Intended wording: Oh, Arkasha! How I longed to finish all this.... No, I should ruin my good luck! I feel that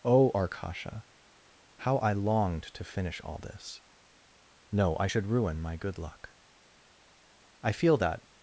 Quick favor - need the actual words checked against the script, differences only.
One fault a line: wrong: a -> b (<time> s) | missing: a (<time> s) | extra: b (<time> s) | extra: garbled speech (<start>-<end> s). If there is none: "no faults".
no faults